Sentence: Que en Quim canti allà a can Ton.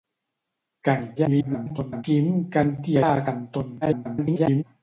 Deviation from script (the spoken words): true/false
true